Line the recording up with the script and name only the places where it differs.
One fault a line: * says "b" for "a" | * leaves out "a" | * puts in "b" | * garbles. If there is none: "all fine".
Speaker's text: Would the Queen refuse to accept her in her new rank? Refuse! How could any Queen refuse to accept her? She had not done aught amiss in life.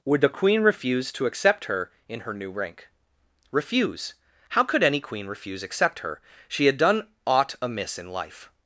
* leaves out "to"
* leaves out "not"